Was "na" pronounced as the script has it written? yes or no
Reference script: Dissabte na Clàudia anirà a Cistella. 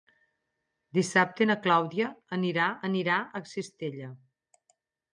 yes